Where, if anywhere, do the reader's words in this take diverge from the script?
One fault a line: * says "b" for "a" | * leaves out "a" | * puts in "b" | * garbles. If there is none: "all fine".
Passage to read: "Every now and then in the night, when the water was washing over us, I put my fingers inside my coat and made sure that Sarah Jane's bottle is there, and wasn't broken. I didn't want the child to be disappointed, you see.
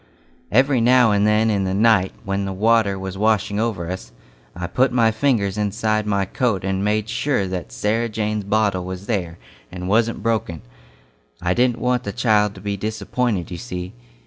* says "was" for "is"